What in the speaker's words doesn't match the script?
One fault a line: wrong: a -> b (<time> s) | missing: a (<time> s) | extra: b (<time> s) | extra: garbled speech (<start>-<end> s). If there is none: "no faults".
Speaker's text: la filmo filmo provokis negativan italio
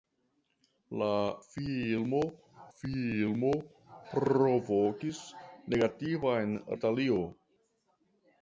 no faults